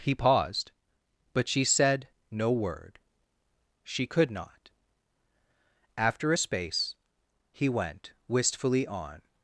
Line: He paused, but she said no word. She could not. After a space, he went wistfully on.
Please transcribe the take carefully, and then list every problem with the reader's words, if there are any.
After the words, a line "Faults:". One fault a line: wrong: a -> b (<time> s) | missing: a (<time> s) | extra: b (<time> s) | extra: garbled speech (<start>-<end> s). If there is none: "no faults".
He paused, but she said no word. She could not. After a space, he went wistfully on.
Faults:
no faults